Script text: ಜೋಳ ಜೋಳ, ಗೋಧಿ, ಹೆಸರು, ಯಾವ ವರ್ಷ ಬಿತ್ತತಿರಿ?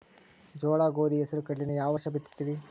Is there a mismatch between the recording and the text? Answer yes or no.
yes